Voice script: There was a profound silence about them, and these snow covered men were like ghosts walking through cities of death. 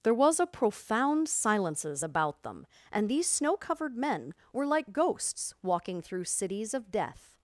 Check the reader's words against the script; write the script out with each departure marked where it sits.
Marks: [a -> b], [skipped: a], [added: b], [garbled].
There was a profound [silence -> silences] about them, and these snow covered men were like ghosts walking through cities of death.